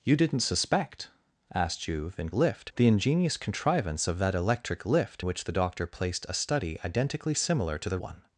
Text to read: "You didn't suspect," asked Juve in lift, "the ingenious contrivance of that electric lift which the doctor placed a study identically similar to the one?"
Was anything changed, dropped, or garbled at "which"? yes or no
no